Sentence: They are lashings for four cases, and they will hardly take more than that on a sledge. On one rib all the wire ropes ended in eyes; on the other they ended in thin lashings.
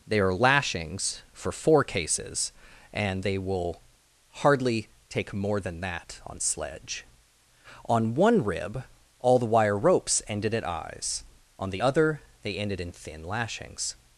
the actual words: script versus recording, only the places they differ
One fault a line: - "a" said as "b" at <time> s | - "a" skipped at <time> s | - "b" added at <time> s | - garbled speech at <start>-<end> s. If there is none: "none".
- "a" skipped at 6.4 s
- "in" said as "at" at 10.5 s